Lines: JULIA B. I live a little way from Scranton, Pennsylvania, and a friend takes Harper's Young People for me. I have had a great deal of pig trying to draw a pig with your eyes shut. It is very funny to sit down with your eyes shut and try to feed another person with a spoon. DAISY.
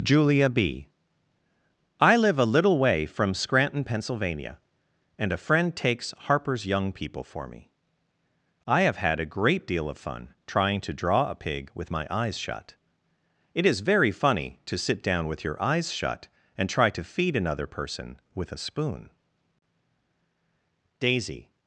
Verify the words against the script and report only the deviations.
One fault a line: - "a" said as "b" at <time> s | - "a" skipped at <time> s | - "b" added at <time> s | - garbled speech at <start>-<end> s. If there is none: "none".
- "pig" said as "fun" at 10.0 s
- "your" said as "my" at 11.9 s